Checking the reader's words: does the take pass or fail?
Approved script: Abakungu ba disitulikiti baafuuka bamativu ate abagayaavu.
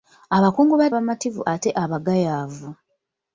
fail